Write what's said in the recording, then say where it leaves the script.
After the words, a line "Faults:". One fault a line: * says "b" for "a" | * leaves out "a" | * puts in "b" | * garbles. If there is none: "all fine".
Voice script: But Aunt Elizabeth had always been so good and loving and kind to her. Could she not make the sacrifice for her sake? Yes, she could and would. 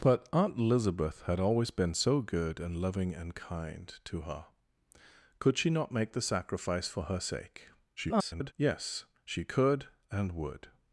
But Aunt Elizabeth had always been so good and loving and kind to her. Could she not make the sacrifice for her sake? [garbled] Yes, she could and would.
Faults:
* garbles